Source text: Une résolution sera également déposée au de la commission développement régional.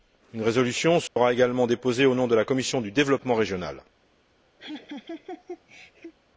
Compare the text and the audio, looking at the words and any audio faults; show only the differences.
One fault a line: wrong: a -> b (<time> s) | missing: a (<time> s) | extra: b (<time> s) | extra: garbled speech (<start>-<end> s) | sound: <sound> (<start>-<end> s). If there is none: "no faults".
sound: dropout (1.1-1.2 s)
extra: nom (2.1 s)
extra: du (2.8 s)
sound: laugh (4.6-6.1 s)